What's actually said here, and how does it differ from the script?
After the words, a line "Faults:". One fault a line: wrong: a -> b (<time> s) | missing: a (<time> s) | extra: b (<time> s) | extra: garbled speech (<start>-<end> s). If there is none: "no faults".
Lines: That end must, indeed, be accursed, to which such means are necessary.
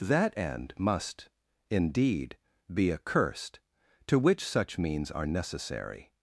That end must, indeed, be accursed, to which such means are necessary.
Faults:
no faults